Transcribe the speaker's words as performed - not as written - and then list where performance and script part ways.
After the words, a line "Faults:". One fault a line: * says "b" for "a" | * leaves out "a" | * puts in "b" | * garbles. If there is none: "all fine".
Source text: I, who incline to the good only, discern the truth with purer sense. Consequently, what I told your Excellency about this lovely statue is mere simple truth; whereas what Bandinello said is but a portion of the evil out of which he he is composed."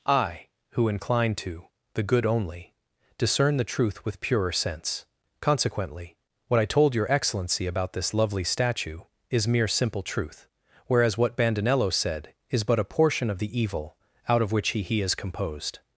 I, who incline to the good only, discern the truth with purer sense. Consequently, what I told your Excellency about this lovely statue is mere simple truth; whereas what Bandinello said is but a portion of the evil out of which he he is composed."
Faults:
all fine